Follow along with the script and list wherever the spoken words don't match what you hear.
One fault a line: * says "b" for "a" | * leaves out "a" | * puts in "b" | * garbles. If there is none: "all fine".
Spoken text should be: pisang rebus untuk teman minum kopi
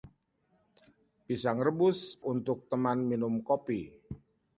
all fine